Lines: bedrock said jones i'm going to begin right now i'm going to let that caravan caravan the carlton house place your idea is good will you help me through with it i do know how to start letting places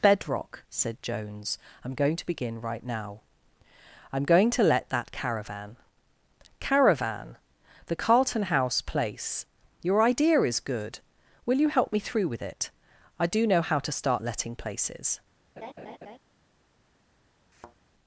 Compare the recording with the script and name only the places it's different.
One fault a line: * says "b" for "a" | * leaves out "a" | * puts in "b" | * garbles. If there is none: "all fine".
all fine